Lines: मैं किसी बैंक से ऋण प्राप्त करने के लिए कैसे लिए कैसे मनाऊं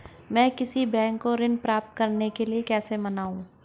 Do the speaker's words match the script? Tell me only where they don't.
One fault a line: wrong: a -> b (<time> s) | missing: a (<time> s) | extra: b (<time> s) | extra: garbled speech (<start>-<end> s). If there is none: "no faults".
wrong: से -> को (1.2 s)
missing: लिए कैसे (3.0 s)